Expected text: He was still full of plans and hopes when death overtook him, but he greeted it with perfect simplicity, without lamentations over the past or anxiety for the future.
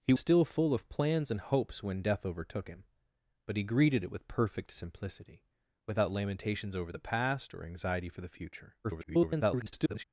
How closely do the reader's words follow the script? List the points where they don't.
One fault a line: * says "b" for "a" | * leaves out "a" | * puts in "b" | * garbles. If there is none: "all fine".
* leaves out "was"
* garbles